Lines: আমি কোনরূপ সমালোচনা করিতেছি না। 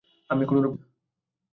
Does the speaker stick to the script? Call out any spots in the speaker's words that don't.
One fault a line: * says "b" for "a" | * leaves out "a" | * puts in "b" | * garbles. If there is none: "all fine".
* leaves out "সমালোচনা করিতেছি"